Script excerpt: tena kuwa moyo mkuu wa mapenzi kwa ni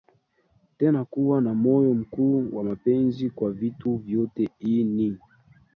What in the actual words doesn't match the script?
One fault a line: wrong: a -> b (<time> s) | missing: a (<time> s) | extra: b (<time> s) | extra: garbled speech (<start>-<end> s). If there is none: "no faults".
extra: na (1.4 s)
extra: vitu vyote Hii (3.5 s)